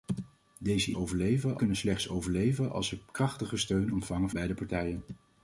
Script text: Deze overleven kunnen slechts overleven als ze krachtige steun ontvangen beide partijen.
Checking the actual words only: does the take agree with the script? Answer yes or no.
yes